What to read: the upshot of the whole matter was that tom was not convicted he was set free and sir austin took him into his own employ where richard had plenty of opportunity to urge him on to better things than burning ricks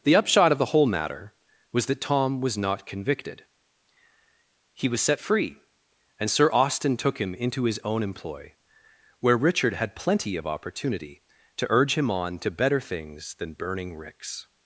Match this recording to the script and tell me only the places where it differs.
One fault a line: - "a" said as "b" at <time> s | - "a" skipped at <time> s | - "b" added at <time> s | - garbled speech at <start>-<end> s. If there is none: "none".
none